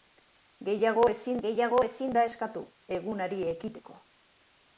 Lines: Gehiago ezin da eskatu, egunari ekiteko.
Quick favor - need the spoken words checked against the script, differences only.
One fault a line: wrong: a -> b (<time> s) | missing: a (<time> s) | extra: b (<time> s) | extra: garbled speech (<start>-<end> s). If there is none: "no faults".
extra: gehiago ezin (1.5 s)